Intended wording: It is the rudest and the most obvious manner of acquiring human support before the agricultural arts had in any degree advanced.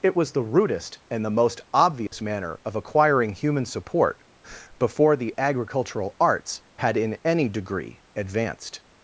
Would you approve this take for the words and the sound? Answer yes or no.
no